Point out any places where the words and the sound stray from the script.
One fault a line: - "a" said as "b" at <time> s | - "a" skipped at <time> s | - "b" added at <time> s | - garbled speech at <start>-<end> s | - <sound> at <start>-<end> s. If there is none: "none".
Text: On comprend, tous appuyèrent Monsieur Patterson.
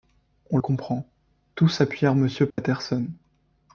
- dropout at 2.5-2.6 s